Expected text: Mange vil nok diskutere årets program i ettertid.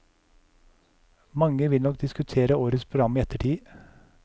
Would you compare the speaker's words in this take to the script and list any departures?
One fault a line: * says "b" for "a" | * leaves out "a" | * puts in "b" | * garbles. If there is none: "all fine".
all fine